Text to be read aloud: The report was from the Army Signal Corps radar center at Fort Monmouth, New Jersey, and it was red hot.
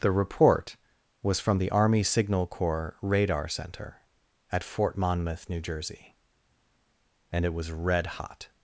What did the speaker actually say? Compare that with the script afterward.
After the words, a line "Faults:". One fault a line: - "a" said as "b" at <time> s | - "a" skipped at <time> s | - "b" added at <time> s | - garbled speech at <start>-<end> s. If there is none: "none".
The report was from the Army Signal Corps radar center at Fort Monmouth, New Jersey, and it was red hot.
Faults:
none